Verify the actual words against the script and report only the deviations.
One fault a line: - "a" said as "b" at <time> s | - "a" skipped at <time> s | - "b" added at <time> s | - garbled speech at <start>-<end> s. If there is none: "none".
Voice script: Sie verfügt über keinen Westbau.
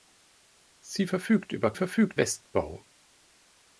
- "keinen" said as "verfügt" at 1.7 s